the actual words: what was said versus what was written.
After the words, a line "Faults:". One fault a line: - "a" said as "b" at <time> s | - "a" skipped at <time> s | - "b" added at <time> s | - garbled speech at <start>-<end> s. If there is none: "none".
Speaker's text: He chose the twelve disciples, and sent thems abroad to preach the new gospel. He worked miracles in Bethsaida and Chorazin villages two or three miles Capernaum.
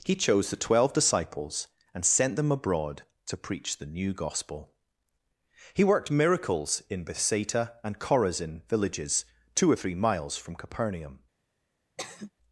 He chose the twelve disciples, and sent them abroad to preach the new gospel. He worked miracles in Bethsaida and Chorazin villages two or three miles from Capernaum.
Faults:
- "thems" said as "them" at 2.4 s
- "from" added at 10.4 s